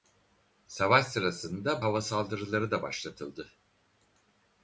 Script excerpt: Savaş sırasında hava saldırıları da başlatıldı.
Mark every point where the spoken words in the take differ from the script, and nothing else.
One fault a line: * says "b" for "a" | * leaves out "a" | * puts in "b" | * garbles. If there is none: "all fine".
all fine